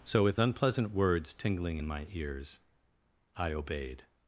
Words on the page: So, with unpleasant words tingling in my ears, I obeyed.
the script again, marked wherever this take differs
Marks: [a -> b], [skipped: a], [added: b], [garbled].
So, with unpleasant words tingling in my ears, I obeyed.